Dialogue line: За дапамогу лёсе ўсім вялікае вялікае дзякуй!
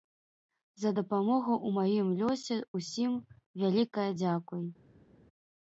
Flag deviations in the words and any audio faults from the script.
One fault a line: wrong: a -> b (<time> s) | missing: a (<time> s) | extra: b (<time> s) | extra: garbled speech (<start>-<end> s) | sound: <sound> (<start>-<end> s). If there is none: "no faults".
extra: ў маім (1.6 s)
missing: вялікае (4.1 s)